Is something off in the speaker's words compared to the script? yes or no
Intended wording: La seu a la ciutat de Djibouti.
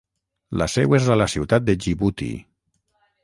yes